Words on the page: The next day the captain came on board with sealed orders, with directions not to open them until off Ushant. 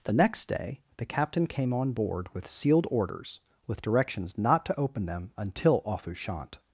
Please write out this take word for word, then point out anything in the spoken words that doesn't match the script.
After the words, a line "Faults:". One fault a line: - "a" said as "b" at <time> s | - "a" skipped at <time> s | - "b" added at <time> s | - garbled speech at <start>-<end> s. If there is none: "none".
The next day the captain came on board with sealed orders, with directions not to open them until off Ushant.
Faults:
none